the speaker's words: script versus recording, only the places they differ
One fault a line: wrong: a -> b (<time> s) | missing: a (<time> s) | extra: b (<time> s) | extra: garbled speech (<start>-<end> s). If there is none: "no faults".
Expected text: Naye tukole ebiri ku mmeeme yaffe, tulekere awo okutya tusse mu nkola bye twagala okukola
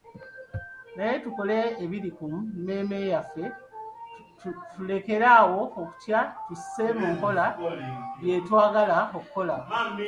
no faults